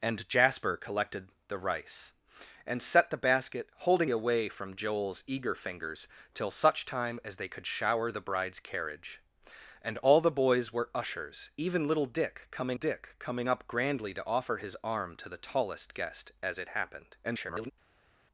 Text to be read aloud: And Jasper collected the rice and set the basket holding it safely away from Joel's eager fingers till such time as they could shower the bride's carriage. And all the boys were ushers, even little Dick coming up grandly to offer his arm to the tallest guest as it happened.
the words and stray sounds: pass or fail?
fail